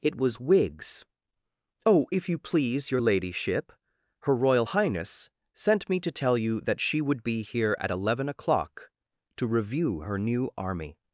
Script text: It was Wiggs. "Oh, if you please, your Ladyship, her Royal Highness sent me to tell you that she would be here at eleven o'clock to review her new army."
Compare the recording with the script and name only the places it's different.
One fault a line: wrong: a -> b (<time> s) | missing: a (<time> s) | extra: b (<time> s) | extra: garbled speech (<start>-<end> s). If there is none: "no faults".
no faults